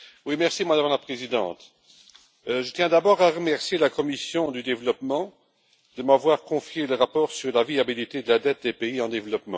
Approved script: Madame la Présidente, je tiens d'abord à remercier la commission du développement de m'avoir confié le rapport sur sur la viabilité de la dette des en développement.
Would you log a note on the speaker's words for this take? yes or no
yes